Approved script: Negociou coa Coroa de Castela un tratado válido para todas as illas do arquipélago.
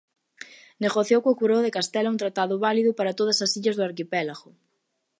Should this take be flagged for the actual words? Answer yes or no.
no